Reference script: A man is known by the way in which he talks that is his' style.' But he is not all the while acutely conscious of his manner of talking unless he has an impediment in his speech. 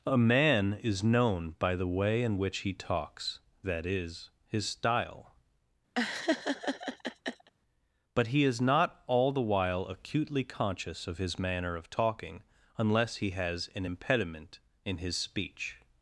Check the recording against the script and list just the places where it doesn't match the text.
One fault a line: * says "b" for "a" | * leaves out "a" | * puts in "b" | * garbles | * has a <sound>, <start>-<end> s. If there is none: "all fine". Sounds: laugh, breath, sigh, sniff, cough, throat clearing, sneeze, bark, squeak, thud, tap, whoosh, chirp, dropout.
* has a laugh, 6.0-7.5 s